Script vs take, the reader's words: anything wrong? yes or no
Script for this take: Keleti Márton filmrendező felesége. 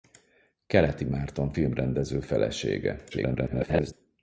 yes